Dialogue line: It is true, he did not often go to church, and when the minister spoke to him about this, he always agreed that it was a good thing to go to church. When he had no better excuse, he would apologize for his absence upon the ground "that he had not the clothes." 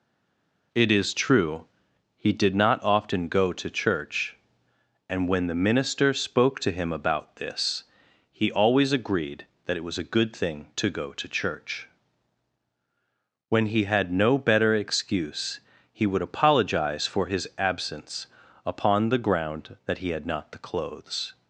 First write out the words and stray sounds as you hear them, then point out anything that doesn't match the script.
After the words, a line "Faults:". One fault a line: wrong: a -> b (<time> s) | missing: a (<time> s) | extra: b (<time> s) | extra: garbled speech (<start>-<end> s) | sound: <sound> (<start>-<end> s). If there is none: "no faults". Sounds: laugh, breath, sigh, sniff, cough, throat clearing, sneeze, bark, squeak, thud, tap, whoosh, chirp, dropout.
It is true, he did not often go to church, and when the minister spoke to him about this, he always agreed that it was a good thing to go to church. When he had no better excuse, he would apologize for his absence upon the ground "that he had not the clothes."
Faults:
no faults